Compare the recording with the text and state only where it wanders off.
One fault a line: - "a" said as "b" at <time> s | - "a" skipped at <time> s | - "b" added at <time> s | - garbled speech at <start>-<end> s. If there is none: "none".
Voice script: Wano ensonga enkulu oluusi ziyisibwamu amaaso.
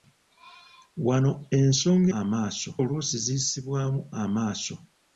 - "enkulu" said as "amaaso" at 2.2 s